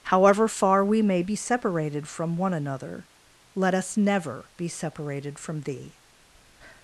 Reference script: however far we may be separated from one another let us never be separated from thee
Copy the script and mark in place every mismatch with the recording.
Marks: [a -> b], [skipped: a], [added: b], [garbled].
however far we may be separated from one another let us never be separated from thee